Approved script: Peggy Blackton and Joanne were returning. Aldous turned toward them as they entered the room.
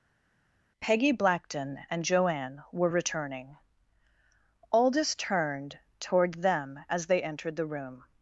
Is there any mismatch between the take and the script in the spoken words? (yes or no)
no